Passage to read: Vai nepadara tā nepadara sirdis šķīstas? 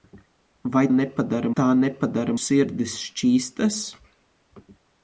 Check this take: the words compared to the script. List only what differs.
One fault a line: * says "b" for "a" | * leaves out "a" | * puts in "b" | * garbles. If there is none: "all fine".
all fine